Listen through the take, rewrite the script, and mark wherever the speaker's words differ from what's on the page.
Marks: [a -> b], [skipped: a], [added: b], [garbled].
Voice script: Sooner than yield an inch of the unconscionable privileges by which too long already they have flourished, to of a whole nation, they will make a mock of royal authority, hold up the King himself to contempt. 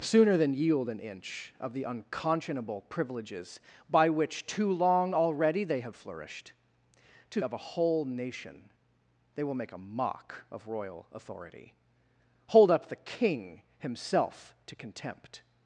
Sooner than yield an inch of the unconscionable privileges by which too long already they have flourished, to of a whole nation, they will make a mock of royal authority, hold up the King himself to contempt.